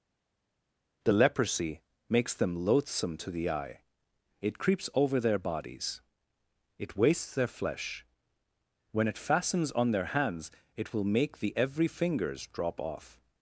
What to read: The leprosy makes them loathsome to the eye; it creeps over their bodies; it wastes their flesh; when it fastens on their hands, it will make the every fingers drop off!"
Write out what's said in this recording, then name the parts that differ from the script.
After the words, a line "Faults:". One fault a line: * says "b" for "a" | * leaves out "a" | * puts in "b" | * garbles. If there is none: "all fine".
The leprosy makes them loathsome to the eye; it creeps over their bodies; it wastes their flesh; when it fastens on their hands, it will make the every fingers drop off!"
Faults:
all fine